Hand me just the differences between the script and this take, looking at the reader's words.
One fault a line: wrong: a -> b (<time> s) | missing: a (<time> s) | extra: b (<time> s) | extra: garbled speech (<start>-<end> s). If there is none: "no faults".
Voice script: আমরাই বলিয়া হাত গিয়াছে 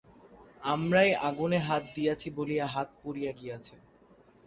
extra: আগুনে হাত দিয়াছি (1.3 s)
extra: পুড়িয়া (3.0 s)